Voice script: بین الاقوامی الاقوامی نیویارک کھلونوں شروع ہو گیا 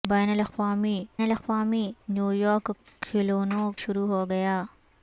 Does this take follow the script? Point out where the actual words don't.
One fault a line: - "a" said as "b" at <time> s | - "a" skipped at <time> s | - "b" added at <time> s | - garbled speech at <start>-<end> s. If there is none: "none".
none